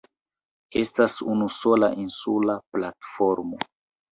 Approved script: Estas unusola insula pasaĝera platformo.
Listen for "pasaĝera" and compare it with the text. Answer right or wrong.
wrong